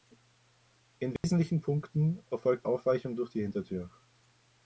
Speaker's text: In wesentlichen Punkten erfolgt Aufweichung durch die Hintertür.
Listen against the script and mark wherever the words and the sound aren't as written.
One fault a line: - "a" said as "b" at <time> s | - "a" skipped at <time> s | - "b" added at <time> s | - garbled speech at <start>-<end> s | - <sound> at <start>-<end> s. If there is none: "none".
- dropout at 1.2-1.2 s